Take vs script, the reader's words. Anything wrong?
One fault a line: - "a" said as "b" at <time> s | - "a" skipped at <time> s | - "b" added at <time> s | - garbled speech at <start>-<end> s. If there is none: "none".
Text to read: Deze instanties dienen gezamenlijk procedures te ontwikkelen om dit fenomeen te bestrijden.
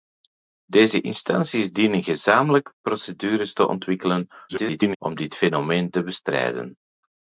- garbled speech at 4.5-5.0 s